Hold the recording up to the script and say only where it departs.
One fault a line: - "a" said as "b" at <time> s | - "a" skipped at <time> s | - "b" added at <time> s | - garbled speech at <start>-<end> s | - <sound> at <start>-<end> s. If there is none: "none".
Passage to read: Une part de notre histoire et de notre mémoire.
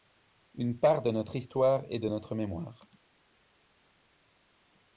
none